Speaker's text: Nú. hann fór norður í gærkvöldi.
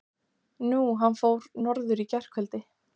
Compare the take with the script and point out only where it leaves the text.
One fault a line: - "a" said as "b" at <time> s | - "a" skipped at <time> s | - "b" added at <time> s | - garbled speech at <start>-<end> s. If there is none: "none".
none